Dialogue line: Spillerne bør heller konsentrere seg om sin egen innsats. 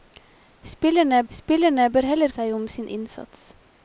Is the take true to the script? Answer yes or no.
no